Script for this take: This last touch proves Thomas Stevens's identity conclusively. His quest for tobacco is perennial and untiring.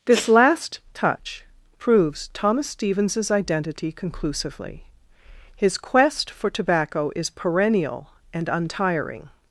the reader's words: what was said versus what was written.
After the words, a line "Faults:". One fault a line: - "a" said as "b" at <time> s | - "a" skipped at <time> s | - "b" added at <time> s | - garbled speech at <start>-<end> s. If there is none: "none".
This last touch proves Thomas Stevens's identity conclusively. His quest for tobacco is perennial and untiring.
Faults:
none